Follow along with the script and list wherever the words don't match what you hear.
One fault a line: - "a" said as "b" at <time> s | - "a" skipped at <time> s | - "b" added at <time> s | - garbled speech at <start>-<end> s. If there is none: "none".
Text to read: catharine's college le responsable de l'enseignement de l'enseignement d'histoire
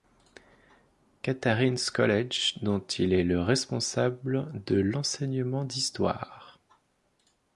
- "dont il est" added at 2.6 s
- "de l'enseignement" skipped at 5.6 s